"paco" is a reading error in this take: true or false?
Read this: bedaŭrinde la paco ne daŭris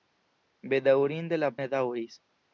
true